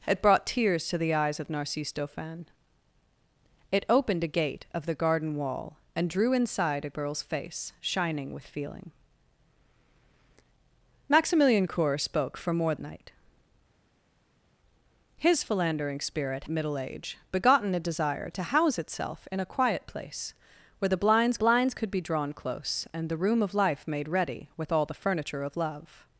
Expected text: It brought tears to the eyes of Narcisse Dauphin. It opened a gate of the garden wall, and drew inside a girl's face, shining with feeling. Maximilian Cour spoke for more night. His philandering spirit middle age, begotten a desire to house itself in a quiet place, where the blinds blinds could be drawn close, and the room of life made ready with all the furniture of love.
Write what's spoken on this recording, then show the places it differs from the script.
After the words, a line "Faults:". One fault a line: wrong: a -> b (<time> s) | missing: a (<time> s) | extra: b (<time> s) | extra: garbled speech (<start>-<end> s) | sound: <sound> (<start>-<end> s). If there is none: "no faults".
It brought tears to the eyes of Narcisse Dauphin. It opened a gate of the garden wall, and drew inside a girl's face, shining with feeling. Maximilian Cour spoke for more night. His philandering spirit middle age, begotten a desire to house itself in a quiet place, where the blinds blinds could be drawn close, and the room of life made ready with all the furniture of love.
Faults:
no faults